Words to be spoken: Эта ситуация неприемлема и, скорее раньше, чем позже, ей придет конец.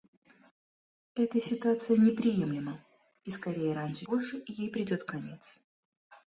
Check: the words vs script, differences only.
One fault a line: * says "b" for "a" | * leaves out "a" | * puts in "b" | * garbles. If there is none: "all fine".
* leaves out "чем"